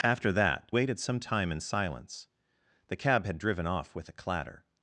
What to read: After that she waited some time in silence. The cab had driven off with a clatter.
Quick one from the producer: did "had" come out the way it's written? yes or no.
yes